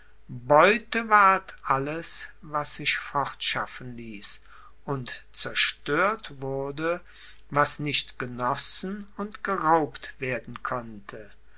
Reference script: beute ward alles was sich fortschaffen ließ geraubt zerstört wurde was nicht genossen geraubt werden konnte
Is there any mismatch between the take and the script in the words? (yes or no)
yes